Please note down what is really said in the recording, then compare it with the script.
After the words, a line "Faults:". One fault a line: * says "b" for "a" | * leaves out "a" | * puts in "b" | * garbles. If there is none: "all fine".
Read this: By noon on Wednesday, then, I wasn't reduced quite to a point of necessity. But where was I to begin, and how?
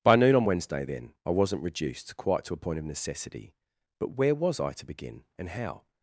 By noon on Wednesday, then, I wasn't reduced quite to a point of necessity. But where was I to begin, and how?
Faults:
all fine